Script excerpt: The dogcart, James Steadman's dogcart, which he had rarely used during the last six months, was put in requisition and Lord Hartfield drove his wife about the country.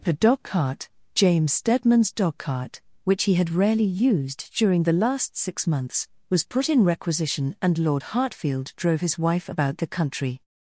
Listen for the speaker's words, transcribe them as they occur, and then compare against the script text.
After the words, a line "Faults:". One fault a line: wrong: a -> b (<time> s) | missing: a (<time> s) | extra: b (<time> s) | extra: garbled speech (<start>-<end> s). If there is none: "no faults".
The dogcart, James Steadman's dogcart, which he had rarely used during the last six months, was put in requisition and Lord Hartfield drove his wife about the country.
Faults:
no faults